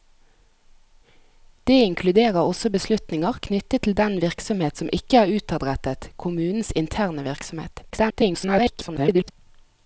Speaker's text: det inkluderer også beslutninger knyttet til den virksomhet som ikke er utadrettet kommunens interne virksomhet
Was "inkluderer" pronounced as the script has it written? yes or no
yes